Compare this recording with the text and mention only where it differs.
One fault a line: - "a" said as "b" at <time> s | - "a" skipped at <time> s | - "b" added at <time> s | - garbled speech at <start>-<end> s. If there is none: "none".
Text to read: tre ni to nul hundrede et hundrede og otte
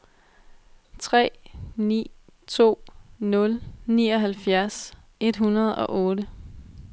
- "hundrede" said as "nioghalvfjerds" at 3.9 s